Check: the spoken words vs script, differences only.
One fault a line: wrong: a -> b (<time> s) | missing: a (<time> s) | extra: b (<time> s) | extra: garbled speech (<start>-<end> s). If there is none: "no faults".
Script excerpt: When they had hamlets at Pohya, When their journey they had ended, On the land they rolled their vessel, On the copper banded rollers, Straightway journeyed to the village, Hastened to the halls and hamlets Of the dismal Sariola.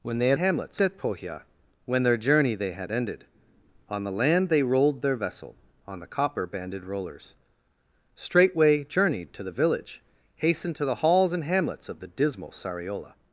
no faults